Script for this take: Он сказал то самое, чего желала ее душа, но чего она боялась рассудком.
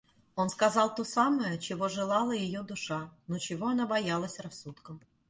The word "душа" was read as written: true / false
true